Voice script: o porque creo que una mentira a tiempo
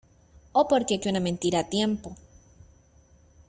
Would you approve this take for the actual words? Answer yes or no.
no